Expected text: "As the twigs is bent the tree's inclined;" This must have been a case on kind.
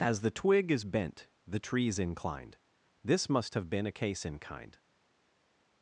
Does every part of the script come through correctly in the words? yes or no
no